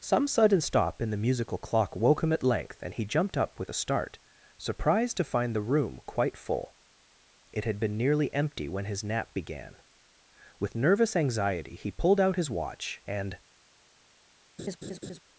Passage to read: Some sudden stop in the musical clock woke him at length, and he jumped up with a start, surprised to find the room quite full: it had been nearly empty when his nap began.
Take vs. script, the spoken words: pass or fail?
fail